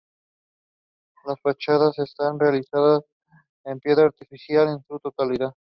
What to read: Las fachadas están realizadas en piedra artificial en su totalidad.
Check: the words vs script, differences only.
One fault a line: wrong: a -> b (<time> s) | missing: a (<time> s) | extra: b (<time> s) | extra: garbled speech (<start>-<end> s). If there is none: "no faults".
no faults